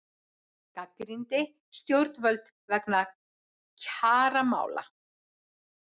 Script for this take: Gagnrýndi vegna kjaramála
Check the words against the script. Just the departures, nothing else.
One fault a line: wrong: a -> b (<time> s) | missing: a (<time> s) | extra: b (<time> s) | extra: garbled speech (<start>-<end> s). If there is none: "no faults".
extra: stjórnvöld (1.8 s)